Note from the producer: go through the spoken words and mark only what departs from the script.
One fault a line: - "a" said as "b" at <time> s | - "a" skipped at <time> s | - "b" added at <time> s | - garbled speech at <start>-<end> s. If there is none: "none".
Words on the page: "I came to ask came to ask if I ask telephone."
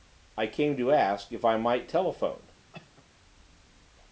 - "came to ask" skipped at 1.3 s
- "ask" said as "might" at 1.6 s